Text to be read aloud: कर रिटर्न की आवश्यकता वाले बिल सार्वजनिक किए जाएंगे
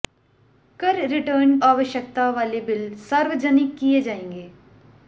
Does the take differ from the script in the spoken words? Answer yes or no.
yes